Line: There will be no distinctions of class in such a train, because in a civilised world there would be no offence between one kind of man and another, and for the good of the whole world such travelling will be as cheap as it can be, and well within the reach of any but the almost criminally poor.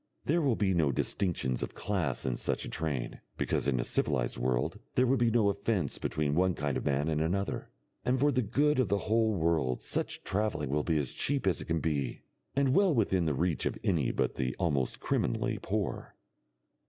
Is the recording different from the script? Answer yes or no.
no